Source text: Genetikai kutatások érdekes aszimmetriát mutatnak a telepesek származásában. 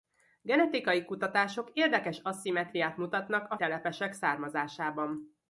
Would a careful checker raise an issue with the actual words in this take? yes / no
no